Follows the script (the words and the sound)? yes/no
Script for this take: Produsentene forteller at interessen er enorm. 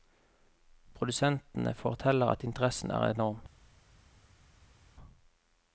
yes